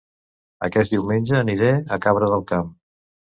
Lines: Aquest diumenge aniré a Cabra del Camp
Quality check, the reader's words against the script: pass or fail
pass